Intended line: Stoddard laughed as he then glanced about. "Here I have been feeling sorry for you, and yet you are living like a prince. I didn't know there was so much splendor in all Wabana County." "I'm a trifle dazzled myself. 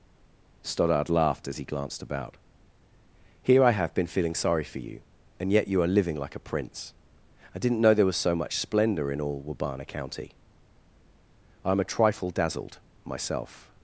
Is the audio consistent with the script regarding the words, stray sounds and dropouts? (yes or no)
no